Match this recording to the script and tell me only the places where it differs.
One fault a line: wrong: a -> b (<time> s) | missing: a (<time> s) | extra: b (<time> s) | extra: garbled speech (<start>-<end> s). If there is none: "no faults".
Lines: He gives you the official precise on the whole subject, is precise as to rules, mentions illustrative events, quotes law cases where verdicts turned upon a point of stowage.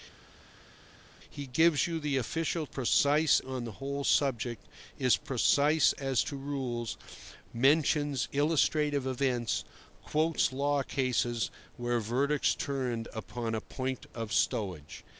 no faults